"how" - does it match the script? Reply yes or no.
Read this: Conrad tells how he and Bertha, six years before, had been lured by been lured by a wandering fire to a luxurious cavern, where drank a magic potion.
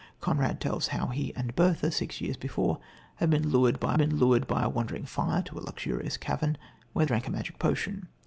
yes